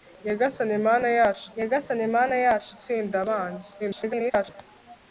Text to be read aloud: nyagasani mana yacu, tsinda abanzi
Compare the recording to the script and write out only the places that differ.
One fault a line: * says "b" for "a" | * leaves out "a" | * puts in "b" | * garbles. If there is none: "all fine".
* puts in "nyagasani mana yacu"
* garbles